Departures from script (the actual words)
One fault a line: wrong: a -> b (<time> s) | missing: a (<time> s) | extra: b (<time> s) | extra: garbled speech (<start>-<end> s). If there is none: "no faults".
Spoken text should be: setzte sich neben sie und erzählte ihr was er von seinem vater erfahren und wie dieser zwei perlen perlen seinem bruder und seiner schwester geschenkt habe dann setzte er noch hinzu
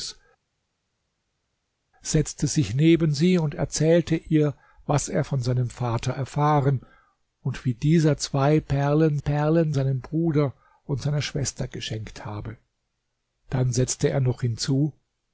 no faults